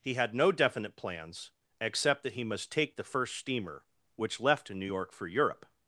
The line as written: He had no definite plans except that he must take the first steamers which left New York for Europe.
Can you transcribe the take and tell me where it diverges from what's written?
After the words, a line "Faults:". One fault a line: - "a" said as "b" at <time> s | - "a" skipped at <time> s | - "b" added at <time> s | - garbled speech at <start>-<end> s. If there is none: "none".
He had no definite plans except that he must take the first steamer which left New York for Europe.
Faults:
- "steamers" said as "steamer" at 3.4 s